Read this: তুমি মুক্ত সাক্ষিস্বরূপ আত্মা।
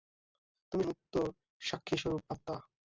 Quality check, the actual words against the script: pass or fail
pass